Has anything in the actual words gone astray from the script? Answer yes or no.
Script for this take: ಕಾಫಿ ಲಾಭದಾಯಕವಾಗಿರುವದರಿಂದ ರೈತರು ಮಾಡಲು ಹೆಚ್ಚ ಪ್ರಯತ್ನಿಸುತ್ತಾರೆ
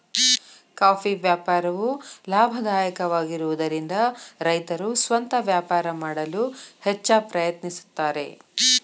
yes